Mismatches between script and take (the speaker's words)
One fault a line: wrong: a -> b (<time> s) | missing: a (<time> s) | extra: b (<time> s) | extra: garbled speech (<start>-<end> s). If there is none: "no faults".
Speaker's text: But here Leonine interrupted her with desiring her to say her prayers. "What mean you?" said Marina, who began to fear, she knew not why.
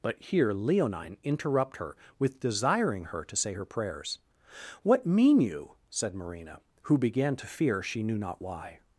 wrong: interrupted -> interrupt (1.2 s)